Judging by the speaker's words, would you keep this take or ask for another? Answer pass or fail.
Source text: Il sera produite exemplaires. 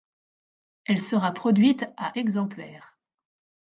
fail